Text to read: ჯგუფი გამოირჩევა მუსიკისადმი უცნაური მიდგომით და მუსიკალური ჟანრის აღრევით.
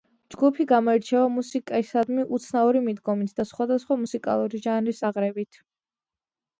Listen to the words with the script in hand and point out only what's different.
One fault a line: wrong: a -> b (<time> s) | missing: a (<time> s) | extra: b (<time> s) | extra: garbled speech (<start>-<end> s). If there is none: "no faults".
extra: სხვადასხვა (3.5 s)